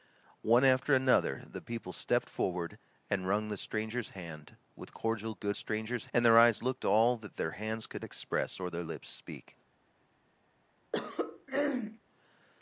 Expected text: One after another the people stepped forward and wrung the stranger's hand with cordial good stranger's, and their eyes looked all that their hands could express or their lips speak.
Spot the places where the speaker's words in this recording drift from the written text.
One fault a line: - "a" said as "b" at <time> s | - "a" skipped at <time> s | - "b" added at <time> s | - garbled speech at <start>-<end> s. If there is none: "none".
none